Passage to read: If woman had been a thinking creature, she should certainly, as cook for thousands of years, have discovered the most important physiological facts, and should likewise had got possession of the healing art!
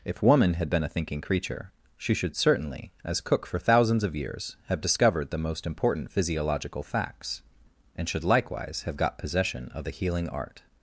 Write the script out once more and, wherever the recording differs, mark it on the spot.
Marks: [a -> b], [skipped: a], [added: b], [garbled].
If woman had been a thinking creature, she should certainly, as cook for thousands of years, have discovered the most important physiological facts, and should likewise [had -> have] got possession of the healing art!